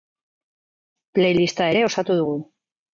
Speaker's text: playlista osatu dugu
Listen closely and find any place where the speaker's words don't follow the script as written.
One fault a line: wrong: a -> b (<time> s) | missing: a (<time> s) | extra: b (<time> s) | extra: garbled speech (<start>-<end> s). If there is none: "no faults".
extra: ere (1.7 s)